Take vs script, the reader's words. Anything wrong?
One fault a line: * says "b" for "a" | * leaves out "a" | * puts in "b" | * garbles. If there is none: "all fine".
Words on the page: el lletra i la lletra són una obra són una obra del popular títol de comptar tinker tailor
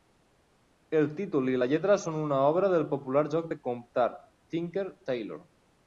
* says "títol" for "lletra"
* leaves out "són una obra"
* says "joc" for "títol"